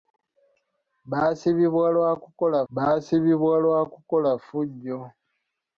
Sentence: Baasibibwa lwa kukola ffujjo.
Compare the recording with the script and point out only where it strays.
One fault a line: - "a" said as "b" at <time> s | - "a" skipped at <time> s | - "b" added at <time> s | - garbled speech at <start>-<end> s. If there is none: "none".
- "baasibibwa lwa kukola" added at 2.7 s